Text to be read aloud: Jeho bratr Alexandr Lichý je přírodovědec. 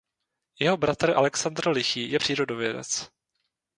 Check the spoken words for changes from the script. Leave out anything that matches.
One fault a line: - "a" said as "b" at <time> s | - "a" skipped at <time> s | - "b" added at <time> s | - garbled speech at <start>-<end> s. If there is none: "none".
none